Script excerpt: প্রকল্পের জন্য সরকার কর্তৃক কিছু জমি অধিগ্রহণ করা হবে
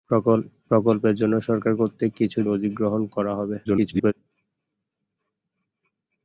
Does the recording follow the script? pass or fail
fail